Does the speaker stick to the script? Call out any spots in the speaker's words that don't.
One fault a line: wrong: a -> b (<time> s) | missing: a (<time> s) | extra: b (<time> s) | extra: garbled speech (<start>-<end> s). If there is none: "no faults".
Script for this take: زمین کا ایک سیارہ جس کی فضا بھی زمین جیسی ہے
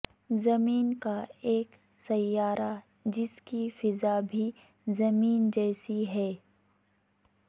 no faults